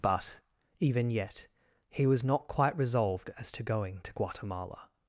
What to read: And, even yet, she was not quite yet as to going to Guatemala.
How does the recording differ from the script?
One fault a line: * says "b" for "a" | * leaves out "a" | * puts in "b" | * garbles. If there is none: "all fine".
* says "But" for "And"
* says "he" for "she"
* says "resolved" for "yet"